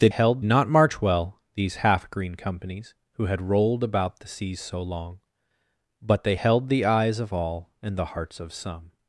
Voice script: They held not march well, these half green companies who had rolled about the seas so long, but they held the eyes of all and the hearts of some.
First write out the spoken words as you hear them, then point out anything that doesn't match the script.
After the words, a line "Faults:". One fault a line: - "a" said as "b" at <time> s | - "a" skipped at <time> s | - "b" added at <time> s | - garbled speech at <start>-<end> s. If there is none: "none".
They held not march well, these half green companies who had rolled about the seas so long, but they held the eyes of all and the hearts of some.
Faults:
none